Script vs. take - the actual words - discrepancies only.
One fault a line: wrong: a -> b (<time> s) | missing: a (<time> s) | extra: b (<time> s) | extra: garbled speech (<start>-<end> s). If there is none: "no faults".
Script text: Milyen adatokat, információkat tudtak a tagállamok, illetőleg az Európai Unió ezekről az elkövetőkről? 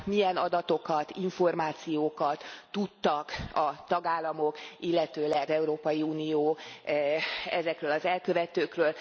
missing: az (5.5 s)